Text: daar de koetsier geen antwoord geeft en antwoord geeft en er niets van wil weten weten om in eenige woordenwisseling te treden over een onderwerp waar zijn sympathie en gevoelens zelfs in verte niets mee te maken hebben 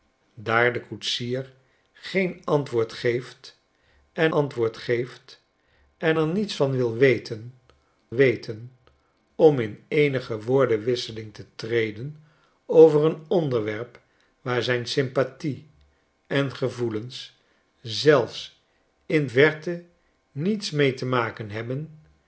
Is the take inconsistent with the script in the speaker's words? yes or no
no